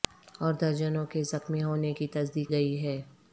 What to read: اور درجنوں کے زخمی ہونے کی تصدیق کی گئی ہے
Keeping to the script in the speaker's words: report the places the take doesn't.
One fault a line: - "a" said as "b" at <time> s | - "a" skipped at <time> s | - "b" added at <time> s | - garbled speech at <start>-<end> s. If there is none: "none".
- "کی" skipped at 2.5 s